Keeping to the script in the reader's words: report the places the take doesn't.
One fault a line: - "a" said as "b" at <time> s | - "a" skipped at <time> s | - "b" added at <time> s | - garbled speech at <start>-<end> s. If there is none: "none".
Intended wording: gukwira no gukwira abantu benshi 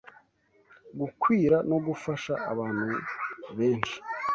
- "gukwira" said as "gufasha" at 1.9 s